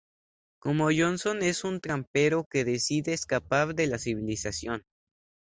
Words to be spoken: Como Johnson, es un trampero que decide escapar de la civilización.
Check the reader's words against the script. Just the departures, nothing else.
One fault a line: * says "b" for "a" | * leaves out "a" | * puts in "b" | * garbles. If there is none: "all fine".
all fine